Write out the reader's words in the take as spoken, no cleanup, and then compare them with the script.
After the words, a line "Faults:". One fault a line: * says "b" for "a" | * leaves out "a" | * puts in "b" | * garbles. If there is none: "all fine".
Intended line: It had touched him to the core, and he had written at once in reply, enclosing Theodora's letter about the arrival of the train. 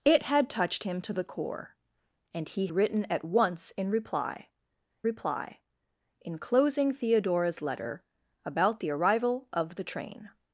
It had touched him to the core, and he written at once in reply reply, enclosing Theodora's letter about the arrival of the train.
Faults:
* leaves out "had"
* puts in "reply"